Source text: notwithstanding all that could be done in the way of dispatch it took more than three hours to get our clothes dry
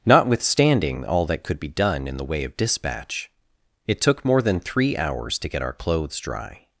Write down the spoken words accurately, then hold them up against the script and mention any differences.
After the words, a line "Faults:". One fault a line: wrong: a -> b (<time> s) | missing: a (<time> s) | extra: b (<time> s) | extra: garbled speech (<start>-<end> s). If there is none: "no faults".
notwithstanding all that could be done in the way of dispatch it took more than three hours to get our clothes dry
Faults:
no faults